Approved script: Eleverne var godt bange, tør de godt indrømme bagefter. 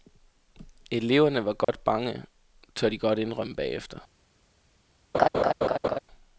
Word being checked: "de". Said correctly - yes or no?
yes